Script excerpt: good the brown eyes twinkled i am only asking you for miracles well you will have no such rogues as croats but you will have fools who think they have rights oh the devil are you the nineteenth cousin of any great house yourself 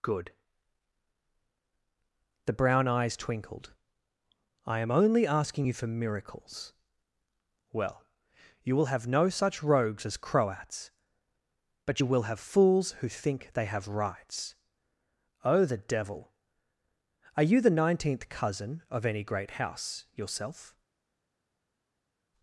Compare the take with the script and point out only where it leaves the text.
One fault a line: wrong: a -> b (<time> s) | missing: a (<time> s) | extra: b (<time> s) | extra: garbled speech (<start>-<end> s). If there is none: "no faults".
no faults